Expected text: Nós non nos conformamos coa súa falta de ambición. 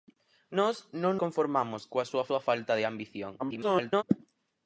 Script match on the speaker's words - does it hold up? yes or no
no